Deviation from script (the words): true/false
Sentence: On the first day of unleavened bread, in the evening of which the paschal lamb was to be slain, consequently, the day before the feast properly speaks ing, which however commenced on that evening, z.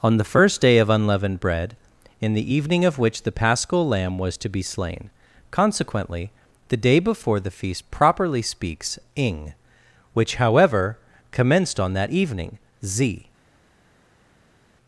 false